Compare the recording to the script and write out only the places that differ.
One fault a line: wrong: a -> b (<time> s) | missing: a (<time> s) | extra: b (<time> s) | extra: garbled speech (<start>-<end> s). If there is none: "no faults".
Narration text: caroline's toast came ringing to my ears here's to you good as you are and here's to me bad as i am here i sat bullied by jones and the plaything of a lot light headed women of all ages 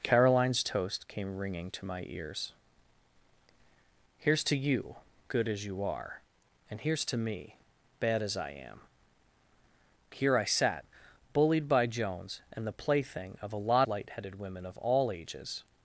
no faults